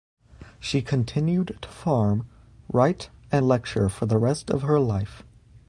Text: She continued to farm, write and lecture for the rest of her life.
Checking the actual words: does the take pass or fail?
pass